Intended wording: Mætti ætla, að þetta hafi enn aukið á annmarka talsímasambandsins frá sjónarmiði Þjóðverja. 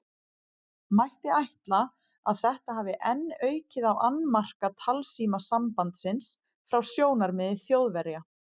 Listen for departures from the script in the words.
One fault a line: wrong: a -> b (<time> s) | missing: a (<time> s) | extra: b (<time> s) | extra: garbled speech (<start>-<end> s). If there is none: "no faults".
no faults